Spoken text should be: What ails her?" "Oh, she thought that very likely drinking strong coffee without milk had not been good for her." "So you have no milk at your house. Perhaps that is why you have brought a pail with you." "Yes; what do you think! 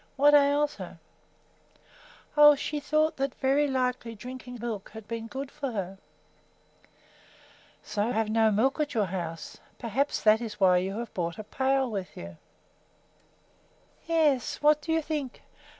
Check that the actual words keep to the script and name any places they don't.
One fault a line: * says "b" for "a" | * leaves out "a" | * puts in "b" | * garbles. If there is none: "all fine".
* leaves out "strong coffee without"
* leaves out "not"
* leaves out "you"